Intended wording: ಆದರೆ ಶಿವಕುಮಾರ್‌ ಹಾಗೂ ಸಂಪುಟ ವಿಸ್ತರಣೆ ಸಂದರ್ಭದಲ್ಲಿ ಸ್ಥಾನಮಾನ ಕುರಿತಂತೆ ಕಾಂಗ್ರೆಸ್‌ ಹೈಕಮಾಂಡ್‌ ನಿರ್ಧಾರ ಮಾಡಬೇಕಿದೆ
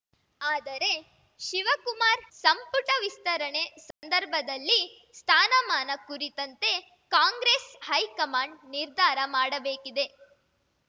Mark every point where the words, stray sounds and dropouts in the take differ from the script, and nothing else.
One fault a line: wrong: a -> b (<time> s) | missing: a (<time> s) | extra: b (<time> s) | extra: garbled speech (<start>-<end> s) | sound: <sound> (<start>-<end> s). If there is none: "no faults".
missing: ಹಾಗೂ (2.2 s)
sound: dropout (3.9-4.0 s)